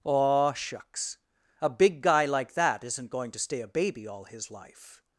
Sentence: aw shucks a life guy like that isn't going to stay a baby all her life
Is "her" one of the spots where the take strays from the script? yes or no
yes